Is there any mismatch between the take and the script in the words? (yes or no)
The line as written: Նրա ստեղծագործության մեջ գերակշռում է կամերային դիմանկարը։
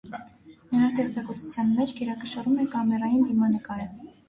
no